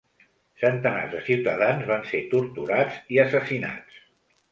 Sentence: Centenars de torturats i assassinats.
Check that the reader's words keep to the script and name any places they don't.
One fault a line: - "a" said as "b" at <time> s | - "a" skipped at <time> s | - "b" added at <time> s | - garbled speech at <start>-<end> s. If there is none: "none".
- "ciutadans van ser" added at 1.3 s